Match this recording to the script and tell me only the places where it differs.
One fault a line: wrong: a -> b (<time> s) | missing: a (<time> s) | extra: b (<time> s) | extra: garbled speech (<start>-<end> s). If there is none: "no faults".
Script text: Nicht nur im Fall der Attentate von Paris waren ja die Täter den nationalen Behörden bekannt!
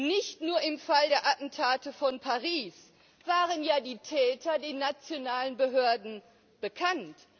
no faults